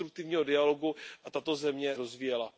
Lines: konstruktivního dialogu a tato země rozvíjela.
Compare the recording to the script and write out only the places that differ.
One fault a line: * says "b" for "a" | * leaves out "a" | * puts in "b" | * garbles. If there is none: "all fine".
all fine